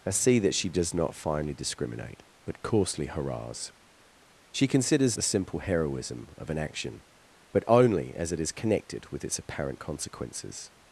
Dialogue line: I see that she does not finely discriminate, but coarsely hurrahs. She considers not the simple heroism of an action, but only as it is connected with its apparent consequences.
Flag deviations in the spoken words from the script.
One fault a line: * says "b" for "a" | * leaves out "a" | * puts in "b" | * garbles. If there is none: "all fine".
* leaves out "not"